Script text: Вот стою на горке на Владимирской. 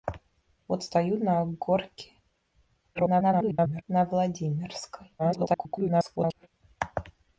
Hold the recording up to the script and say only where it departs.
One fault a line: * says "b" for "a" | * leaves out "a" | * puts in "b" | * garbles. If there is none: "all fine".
* garbles
* garbles